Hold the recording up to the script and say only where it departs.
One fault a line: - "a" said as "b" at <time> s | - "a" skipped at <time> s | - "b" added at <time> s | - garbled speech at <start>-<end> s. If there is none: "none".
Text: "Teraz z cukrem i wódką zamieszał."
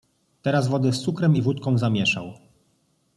- "wodę" added at 0.7 s